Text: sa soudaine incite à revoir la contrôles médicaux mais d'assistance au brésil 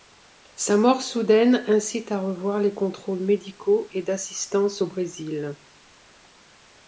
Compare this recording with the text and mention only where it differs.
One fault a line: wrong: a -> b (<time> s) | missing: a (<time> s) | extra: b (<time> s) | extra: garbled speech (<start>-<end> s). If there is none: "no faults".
extra: mort (0.8 s)
wrong: la -> les (2.6 s)
wrong: mais -> et (3.9 s)